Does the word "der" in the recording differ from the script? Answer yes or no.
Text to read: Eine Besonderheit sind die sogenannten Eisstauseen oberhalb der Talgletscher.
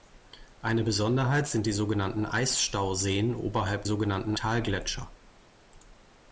yes